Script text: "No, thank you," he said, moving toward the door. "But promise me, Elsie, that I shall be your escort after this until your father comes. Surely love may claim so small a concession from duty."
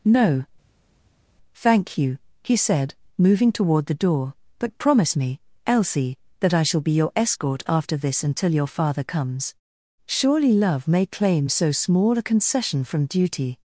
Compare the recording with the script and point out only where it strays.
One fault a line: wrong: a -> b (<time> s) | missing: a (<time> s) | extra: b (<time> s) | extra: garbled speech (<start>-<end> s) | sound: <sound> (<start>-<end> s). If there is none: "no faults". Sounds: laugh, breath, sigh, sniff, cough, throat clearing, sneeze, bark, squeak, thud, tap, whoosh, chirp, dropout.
no faults